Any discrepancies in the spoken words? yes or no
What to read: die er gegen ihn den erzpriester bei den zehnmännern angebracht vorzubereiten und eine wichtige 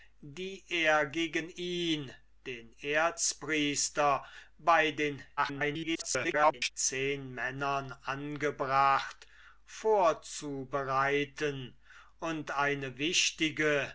yes